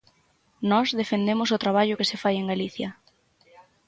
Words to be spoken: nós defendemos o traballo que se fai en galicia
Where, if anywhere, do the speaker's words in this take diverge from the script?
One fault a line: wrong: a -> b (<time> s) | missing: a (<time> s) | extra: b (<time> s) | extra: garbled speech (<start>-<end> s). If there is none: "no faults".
no faults